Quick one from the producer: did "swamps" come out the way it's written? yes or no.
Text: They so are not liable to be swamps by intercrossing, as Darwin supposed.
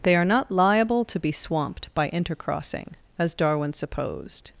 no